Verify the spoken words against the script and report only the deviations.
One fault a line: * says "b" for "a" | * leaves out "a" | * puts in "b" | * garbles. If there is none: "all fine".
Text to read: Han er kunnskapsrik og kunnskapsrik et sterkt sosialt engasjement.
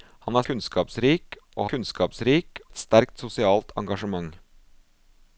all fine